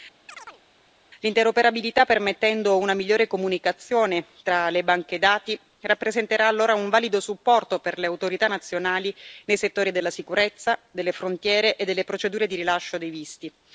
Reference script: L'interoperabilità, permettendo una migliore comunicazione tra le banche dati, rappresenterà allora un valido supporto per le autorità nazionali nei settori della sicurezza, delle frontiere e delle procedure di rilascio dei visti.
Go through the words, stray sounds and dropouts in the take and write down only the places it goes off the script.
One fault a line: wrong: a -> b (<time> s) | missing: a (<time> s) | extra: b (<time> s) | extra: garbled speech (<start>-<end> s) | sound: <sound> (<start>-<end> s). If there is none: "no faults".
sound: chirp (0.3-0.6 s)